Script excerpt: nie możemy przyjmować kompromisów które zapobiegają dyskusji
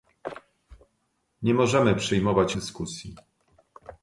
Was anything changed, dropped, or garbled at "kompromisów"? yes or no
yes